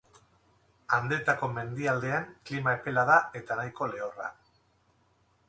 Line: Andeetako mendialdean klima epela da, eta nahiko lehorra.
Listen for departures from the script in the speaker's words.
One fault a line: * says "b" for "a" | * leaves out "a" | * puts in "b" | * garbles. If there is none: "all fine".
all fine